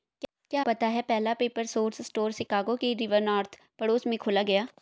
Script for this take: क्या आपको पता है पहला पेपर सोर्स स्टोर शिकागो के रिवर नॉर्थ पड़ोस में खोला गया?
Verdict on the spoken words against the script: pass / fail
fail